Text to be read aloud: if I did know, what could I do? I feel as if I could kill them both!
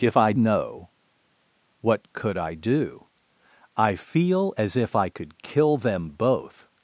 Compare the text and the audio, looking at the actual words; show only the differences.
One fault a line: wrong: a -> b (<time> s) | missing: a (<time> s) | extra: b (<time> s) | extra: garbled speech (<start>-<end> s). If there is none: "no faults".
missing: did (0.3 s)